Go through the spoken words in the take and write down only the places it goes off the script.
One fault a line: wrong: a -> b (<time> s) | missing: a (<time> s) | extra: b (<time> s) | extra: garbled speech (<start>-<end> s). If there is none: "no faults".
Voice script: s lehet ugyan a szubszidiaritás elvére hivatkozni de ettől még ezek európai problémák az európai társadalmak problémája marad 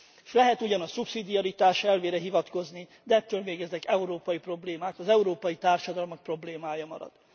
no faults